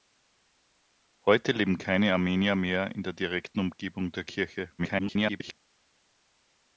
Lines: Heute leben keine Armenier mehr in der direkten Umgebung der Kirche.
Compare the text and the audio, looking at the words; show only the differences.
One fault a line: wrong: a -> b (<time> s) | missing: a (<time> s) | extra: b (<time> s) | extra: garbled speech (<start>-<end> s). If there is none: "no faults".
extra: garbled speech (4.8-5.6 s)